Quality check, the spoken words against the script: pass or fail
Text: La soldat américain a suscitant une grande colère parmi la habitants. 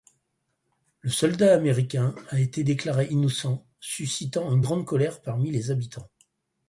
fail